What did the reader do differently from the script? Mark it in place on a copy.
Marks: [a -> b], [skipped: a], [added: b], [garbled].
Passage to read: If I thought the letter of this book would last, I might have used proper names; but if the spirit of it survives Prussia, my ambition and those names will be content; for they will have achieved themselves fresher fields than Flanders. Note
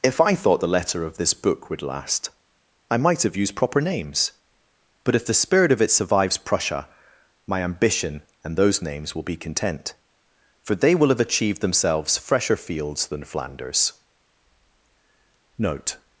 If I thought the letter of this book would last, I might have used proper names; but if the spirit of it survives Prussia, my ambition and those names will be content; for they will have achieved themselves fresher fields than Flanders. Note